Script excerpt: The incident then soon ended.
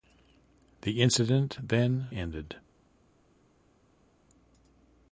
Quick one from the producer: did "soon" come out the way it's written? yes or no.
no